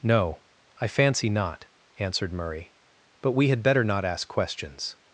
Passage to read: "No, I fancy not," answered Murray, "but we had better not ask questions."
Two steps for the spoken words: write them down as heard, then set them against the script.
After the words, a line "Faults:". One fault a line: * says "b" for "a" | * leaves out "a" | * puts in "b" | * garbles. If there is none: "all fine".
"No, I fancy not," answered Murray, "but we had better not ask questions."
Faults:
all fine